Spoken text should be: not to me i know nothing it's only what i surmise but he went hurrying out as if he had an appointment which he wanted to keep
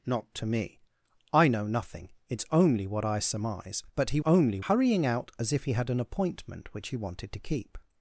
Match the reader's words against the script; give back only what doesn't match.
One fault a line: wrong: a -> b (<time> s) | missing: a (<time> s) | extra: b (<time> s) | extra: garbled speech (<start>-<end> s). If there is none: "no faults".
wrong: went -> only (4.2 s)